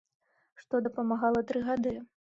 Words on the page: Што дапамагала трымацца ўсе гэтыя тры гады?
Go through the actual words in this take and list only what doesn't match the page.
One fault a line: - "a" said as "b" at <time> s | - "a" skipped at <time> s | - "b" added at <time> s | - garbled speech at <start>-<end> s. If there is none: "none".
- "трымацца ўсе гэтыя" skipped at 1.4 s